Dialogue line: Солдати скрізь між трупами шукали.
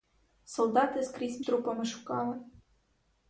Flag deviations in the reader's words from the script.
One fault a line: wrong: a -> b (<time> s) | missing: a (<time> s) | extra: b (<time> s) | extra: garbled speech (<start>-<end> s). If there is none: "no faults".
missing: між (1.4 s)